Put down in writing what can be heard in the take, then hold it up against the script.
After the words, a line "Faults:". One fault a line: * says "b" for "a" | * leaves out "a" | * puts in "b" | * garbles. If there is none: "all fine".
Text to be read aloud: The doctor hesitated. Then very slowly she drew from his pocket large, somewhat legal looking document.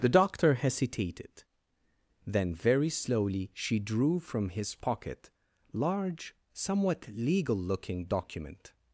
The doctor hesitated. Then very slowly she drew from his pocket large, somewhat legal looking document.
Faults:
all fine